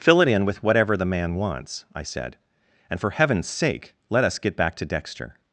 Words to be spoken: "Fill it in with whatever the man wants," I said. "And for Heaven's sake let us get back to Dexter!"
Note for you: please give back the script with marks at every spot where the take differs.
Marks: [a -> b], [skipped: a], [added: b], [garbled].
"Fill it in with whatever the man wants," I said. "And for Heaven's sake let us get back to Dexter!"